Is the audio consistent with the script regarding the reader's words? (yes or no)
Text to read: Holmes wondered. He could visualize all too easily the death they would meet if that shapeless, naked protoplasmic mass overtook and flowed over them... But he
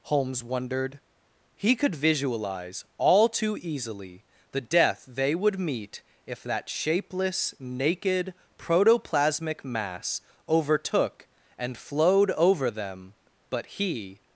yes